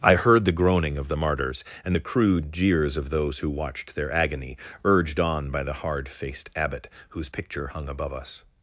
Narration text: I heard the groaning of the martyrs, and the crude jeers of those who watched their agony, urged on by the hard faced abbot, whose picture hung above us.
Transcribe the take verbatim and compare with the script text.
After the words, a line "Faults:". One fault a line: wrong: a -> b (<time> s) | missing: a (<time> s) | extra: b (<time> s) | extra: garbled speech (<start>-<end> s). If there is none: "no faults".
I heard the groaning of the martyrs, and the crude jeers of those who watched their agony, urged on by the hard faced abbot, whose picture hung above us.
Faults:
no faults